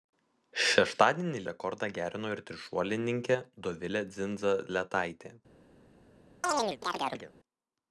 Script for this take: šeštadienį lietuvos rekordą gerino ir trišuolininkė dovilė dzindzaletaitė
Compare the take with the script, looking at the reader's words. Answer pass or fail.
fail